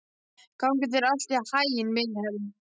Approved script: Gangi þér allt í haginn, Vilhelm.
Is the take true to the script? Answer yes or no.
yes